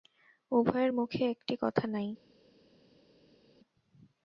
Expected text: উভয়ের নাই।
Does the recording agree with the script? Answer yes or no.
no